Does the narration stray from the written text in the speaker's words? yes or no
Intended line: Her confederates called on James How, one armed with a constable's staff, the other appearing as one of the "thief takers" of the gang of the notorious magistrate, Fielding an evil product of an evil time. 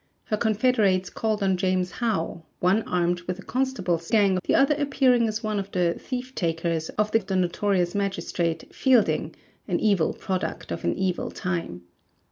yes